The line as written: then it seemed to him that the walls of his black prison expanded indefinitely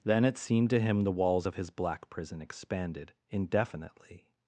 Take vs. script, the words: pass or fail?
fail